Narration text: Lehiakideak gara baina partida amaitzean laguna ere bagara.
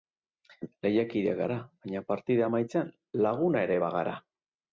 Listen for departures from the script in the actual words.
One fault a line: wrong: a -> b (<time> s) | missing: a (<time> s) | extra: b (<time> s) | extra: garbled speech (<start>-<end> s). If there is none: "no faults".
no faults